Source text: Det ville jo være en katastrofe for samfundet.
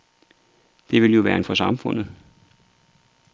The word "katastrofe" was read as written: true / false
false